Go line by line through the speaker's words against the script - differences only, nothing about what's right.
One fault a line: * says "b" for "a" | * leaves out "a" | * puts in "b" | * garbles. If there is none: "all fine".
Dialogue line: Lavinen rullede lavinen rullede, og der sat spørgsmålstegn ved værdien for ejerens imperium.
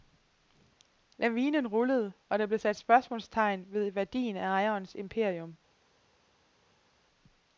* leaves out "lavinen rullede"
* puts in "blev"
* says "af" for "for"